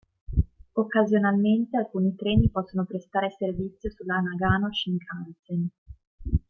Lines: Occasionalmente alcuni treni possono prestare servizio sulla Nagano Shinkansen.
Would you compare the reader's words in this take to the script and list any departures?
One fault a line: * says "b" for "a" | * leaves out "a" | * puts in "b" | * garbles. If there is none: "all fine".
all fine